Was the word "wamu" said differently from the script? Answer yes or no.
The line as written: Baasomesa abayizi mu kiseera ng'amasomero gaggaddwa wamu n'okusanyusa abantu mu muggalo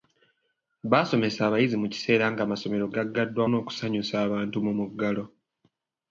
yes